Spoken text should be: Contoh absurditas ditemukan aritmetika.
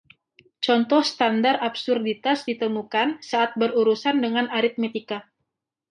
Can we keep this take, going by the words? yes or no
no